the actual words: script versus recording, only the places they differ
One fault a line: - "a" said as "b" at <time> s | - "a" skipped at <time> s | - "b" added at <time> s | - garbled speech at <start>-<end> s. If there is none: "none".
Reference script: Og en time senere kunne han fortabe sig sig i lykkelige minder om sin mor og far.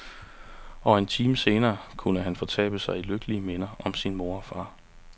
- "sig" skipped at 3.0 s